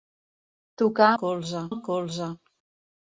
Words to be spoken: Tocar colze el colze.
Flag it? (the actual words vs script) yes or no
no